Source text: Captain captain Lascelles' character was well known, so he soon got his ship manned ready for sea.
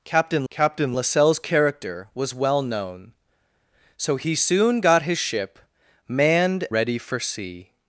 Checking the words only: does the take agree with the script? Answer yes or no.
yes